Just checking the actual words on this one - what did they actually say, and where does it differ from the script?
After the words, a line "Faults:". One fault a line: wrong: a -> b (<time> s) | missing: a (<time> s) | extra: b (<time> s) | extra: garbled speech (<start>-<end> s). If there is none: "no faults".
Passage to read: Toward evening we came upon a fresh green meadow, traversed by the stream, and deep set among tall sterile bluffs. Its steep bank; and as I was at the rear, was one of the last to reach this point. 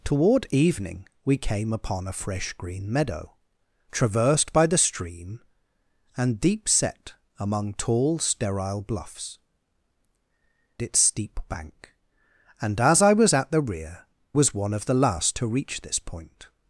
Toward evening we came upon a fresh green meadow, traversed by the stream, and deep set among tall sterile bluffs. Its steep bank; and as I was at the rear, was one of the last to reach this point.
Faults:
no faults